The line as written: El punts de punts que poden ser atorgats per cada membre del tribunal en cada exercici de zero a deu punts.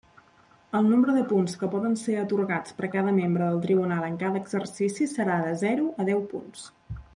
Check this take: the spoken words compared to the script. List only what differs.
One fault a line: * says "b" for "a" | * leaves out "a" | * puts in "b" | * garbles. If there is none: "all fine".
* says "nombre" for "punts"
* puts in "serà"